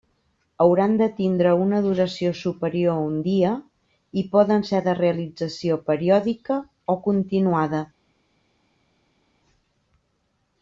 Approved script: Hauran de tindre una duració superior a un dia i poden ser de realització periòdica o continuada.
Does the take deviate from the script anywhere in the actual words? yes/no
no